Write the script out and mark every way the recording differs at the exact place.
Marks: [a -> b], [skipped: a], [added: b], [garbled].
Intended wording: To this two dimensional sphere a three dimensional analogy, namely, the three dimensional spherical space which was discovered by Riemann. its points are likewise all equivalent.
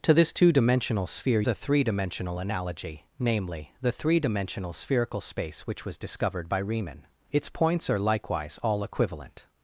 To this two dimensional sphere a three dimensional analogy, namely, the three dimensional spherical space which was discovered by Riemann. its points are likewise all equivalent.